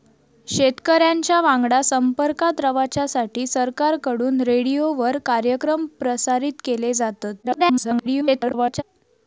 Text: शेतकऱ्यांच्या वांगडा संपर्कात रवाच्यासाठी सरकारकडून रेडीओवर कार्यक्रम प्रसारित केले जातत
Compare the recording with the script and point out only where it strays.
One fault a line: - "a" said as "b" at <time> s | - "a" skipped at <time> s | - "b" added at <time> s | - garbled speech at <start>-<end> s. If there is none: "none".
- garbled speech at 7.4-8.8 s